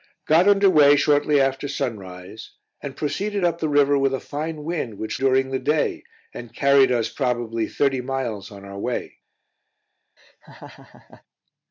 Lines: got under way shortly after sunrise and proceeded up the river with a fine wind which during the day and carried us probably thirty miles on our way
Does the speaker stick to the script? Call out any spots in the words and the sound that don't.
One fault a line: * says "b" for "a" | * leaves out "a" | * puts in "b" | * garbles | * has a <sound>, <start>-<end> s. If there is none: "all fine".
* has a laugh, 10.2-11.2 s